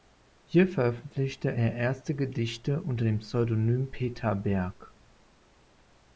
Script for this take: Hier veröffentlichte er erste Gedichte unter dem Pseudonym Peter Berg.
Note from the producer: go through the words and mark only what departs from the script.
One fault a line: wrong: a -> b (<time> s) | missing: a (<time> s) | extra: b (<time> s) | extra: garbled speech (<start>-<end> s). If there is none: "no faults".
no faults